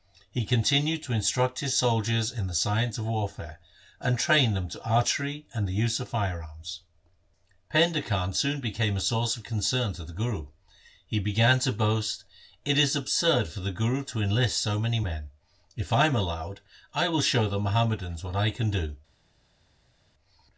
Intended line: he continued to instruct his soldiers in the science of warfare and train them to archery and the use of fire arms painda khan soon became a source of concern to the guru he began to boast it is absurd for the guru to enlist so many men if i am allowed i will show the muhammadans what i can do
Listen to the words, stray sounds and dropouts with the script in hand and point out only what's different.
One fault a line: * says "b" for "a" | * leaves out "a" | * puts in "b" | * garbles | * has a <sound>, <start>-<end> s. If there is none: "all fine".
all fine